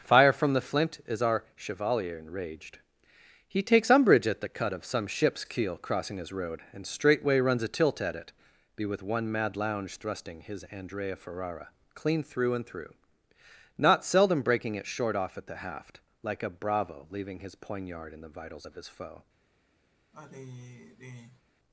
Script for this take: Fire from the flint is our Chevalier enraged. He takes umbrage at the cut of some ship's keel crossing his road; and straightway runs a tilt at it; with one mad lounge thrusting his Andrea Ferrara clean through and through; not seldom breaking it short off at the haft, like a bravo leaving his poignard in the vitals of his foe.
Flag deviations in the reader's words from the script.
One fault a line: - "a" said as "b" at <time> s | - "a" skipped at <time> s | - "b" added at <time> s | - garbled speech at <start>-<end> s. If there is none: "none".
- "be" added at 8.8 s